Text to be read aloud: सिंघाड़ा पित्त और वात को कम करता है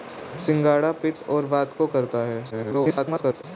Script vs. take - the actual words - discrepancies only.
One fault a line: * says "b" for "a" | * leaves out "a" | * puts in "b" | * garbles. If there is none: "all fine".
* leaves out "कम"
* garbles